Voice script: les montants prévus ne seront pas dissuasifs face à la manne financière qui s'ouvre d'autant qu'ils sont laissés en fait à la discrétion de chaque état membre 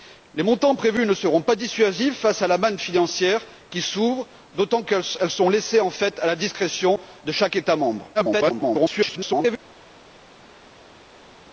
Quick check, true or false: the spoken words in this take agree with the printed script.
false